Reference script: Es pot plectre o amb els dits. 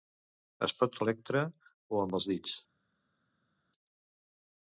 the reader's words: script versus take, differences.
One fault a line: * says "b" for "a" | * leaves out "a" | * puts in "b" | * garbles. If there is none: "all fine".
all fine